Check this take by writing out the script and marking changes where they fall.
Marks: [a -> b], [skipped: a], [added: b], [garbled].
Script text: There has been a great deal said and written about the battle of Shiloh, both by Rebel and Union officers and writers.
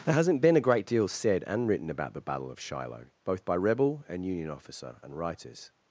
There [has -> hasn't] been a great deal said and written about the battle of Shiloh, both by Rebel and Union [officers -> officer] and writers.